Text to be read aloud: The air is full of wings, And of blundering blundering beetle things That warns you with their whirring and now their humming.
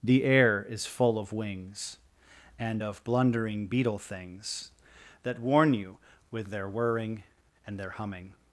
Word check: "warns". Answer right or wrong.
wrong